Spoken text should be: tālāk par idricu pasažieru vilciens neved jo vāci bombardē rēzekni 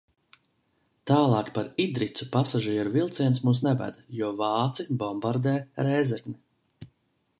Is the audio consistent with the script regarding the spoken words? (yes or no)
no